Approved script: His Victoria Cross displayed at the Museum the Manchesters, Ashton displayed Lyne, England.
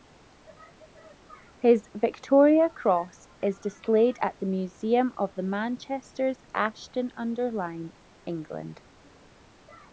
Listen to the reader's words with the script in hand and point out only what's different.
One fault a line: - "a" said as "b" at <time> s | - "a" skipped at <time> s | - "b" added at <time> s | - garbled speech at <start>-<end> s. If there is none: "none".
- "is" added at 3.4 s
- "of" added at 5.2 s
- "displayed" said as "under" at 7.2 s